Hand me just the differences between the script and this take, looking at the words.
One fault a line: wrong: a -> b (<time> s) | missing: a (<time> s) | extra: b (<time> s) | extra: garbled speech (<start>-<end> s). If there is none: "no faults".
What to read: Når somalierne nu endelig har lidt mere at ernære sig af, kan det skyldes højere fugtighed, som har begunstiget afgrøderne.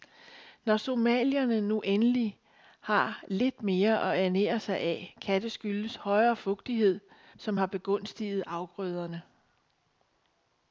no faults